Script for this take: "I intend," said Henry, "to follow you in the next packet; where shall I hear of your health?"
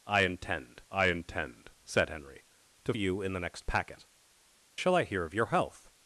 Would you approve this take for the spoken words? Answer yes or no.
no